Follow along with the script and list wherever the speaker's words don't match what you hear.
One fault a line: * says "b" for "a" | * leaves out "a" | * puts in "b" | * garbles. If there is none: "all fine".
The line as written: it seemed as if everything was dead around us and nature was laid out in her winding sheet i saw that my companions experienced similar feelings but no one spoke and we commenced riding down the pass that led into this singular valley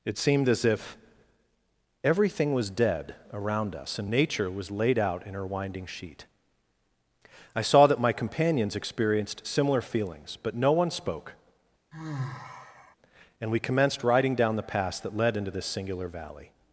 all fine